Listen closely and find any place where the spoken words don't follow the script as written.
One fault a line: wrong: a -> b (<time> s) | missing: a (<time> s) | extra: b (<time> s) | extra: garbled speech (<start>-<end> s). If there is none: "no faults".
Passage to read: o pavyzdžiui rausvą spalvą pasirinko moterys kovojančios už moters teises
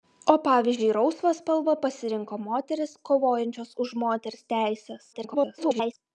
extra: garbled speech (5.1-5.9 s)